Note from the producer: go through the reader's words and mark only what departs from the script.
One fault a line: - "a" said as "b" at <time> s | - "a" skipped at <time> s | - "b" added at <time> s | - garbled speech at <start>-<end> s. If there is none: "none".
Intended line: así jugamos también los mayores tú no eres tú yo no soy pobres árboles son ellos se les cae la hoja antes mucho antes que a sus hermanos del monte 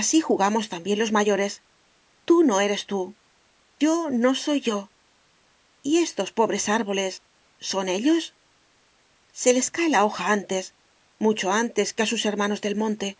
- "yo y estos" added at 4.6 s